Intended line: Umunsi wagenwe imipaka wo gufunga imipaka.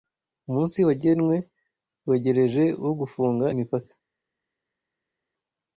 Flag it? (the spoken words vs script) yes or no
yes